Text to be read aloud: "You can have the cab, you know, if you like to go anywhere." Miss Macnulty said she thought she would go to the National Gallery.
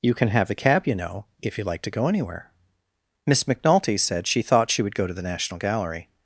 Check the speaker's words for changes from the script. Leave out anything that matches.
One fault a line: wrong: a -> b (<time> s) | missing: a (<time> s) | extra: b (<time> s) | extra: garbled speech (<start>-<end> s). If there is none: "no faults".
no faults